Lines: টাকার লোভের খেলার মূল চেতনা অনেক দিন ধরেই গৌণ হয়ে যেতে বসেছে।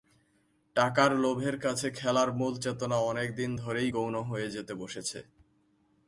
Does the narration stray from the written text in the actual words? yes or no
yes